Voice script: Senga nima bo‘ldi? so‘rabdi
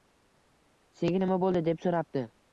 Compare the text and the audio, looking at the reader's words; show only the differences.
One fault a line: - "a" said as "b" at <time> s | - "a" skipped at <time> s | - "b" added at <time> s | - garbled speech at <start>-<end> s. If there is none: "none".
- "deb" added at 1.7 s